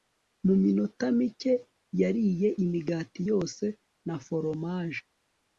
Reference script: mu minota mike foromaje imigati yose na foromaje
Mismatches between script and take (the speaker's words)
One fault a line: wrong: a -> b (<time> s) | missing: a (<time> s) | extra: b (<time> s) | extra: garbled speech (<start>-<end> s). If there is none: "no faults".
wrong: foromaje -> yariye (2.0 s)